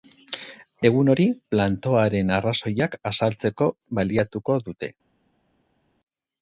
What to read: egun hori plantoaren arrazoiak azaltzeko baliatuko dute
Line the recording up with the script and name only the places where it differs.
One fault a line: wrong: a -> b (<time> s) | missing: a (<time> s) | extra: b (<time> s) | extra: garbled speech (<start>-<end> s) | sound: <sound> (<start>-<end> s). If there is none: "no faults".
no faults